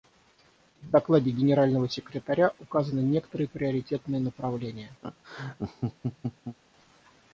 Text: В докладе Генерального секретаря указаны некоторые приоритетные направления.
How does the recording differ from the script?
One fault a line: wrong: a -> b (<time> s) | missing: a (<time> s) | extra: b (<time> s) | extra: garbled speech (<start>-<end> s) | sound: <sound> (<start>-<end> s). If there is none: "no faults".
sound: laugh (5.0-6.6 s)